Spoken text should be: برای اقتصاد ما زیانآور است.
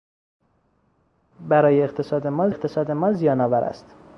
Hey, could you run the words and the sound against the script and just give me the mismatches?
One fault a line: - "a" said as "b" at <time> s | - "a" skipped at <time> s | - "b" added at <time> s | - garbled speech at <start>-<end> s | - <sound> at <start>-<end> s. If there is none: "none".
- "اقتصاد ما" added at 2.5 s